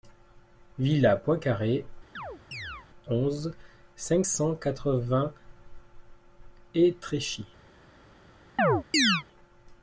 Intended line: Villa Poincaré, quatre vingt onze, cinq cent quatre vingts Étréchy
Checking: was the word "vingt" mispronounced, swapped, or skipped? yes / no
yes